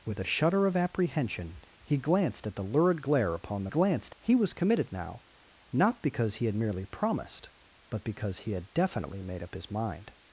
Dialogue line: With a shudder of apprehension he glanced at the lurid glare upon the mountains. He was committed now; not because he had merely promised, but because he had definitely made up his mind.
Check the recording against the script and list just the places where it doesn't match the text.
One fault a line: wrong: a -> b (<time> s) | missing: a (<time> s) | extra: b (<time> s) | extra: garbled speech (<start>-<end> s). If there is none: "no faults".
wrong: mountains -> glanced (3.7 s)